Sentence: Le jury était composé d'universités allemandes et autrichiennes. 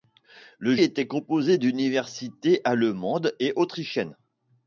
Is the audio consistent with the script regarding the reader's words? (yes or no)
no